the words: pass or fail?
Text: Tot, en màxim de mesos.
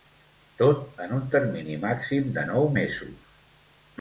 fail